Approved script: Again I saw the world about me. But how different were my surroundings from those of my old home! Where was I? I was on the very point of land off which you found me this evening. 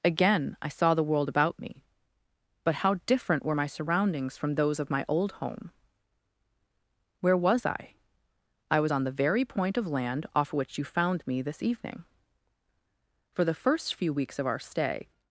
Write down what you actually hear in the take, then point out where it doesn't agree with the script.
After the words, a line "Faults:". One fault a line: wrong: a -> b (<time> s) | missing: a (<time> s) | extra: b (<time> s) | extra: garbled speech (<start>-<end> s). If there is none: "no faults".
Again I saw the world about me. But how different were my surroundings from those of my old home! Where was I? I was on the very point of land off which you found me this evening. "For the first few weeks of our stay
Faults:
extra: For the first few weeks of our stay (13.3 s)